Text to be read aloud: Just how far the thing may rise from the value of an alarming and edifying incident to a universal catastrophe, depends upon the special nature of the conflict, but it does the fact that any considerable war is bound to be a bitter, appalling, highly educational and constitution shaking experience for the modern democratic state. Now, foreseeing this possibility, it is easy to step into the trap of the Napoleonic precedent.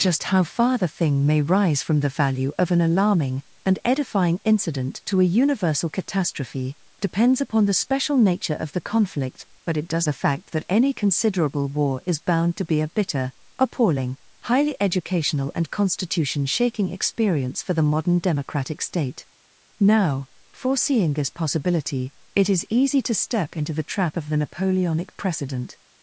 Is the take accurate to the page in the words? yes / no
yes